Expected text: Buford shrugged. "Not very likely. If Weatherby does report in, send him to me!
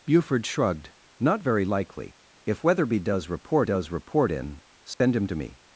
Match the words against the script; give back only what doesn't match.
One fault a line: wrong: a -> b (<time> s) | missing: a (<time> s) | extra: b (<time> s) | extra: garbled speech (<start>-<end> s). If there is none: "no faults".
extra: does report (3.6 s)